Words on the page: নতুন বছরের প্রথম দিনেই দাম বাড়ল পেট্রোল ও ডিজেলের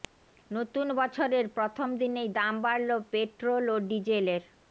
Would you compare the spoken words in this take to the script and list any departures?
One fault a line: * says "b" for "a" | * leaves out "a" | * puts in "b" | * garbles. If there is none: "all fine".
all fine